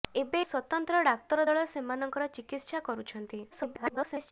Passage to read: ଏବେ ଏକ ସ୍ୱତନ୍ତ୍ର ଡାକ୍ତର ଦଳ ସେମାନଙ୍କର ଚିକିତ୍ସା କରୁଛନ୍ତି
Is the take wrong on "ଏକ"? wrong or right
wrong